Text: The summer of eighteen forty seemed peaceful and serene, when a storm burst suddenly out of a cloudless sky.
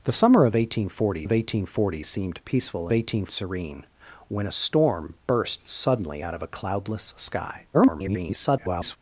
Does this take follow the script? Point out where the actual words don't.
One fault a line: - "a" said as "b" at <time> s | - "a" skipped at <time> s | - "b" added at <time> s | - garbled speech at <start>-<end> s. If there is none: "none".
- "of eighteen forty" added at 1.2 s
- "and" said as "eighteen" at 2.9 s
- garbled speech at 7.7-9.0 s